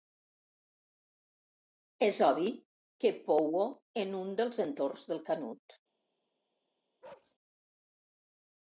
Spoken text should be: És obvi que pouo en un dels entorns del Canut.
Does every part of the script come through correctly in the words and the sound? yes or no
no